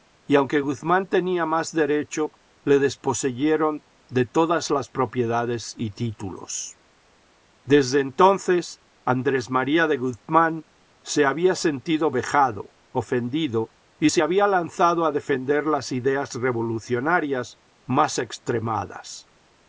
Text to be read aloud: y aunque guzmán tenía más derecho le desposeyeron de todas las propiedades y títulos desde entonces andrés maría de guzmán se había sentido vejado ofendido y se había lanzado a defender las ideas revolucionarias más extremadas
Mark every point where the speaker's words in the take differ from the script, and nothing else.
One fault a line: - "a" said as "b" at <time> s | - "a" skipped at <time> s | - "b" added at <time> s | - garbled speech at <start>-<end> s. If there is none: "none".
none